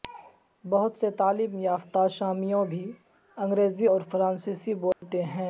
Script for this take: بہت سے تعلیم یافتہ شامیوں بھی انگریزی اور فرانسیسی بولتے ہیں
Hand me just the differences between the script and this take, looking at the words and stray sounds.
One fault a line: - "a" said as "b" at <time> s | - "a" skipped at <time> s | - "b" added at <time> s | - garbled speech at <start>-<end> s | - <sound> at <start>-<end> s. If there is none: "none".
- dropout at 4.9-5.0 s